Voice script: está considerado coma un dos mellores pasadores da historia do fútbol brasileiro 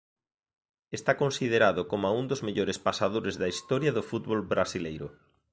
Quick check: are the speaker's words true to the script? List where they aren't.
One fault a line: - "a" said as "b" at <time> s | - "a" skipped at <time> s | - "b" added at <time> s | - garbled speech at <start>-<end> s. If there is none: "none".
none